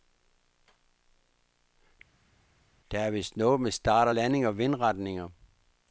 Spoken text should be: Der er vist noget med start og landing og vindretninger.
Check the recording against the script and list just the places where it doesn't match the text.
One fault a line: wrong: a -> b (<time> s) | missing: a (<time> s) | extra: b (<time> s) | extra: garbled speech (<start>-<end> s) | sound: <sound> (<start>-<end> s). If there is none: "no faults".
no faults